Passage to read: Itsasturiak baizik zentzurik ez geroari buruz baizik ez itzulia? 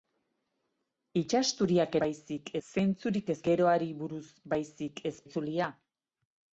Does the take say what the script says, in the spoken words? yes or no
yes